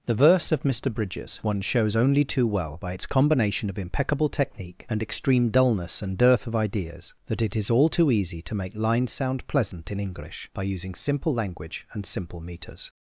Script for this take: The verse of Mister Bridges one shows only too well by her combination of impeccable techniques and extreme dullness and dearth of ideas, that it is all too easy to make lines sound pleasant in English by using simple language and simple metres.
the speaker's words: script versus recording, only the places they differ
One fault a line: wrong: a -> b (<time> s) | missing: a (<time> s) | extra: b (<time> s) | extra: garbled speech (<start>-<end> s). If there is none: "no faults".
wrong: her -> its (2.9 s)
wrong: techniques -> technique (4.3 s)